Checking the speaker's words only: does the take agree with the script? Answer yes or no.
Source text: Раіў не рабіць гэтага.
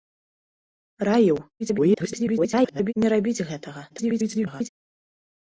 no